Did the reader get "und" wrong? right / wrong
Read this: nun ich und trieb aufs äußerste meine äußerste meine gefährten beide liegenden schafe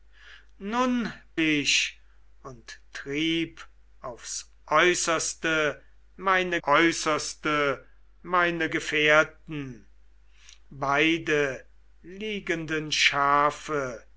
right